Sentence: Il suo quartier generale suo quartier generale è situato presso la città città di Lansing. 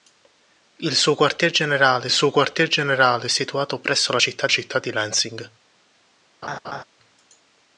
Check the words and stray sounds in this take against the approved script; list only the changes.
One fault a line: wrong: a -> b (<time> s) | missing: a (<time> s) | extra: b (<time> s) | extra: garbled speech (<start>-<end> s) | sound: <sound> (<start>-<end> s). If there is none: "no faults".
sound: laugh (6.4-6.8 s)